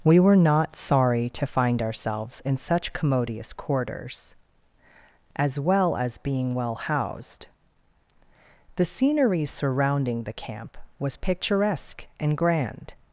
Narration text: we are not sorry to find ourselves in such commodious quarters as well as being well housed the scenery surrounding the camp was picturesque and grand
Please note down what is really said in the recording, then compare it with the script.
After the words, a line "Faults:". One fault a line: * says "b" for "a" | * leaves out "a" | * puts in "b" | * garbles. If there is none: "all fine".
we were not sorry to find ourselves in such commodious quarters as well as being well housed the scenery surrounding the camp was picturesque and grand
Faults:
* says "were" for "are"